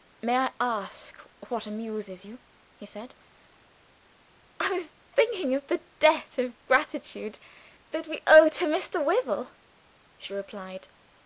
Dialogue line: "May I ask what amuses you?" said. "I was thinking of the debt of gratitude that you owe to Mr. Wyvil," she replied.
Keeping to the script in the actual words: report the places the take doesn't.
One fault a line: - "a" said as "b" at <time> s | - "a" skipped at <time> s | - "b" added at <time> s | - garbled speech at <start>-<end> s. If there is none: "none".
- "he" added at 2.7 s
- "you" said as "we" at 8.1 s